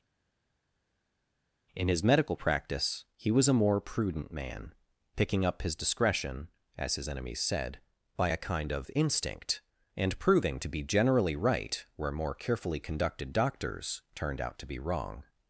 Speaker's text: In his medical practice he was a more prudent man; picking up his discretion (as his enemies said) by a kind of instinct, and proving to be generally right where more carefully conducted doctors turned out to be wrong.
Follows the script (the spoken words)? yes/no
yes